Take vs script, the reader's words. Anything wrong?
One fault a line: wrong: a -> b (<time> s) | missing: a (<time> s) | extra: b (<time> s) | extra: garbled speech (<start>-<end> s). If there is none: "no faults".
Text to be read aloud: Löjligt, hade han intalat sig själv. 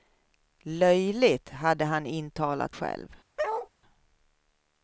missing: sig (2.8 s)